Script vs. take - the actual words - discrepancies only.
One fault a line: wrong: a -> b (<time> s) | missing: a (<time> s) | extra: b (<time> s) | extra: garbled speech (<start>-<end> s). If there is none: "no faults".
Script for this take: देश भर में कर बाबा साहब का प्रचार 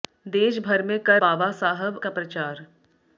no faults